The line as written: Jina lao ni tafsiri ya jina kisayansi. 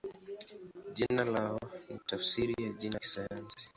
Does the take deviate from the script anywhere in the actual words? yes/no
no